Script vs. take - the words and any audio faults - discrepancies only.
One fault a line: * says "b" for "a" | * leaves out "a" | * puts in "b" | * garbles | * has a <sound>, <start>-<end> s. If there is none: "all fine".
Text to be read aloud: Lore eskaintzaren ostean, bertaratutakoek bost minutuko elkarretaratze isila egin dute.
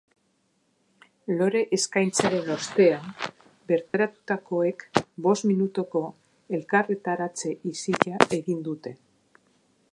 * has a dropout, 3.9-3.9 s